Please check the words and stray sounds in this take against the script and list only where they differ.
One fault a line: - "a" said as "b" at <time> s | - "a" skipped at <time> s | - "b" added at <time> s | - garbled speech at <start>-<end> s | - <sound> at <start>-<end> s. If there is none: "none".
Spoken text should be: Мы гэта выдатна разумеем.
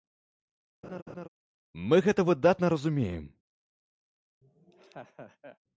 - laugh at 0.8-1.3 s
- laugh at 4.4-5.6 s